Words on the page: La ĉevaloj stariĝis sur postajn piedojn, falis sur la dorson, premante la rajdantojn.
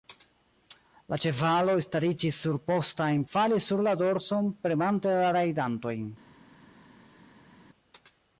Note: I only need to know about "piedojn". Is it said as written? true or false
false